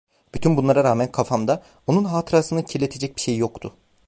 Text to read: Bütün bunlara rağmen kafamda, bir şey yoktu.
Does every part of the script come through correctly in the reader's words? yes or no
no